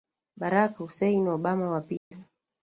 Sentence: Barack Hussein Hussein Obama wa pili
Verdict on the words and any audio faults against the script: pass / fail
fail